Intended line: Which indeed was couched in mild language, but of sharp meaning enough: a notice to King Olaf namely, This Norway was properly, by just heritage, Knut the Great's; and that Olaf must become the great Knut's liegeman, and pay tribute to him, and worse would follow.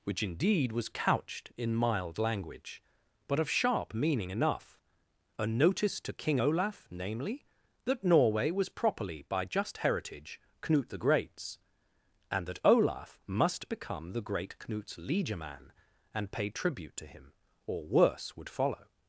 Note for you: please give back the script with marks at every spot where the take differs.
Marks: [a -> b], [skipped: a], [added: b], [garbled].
Which indeed was couched in mild language, but of sharp meaning enough: a notice to King Olaf namely, [This -> That] Norway was properly, by just heritage, Knut the Great's; and that Olaf must become the great Knut's liegeman, and pay tribute to him, [and -> or] worse would follow.